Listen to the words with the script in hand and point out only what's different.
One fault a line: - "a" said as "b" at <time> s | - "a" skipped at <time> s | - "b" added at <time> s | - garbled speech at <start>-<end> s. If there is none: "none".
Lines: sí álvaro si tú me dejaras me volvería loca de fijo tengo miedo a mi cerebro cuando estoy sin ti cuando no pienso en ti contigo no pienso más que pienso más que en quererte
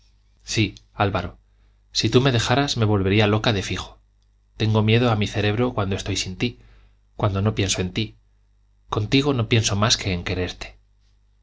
- "pienso más que" skipped at 10.1 s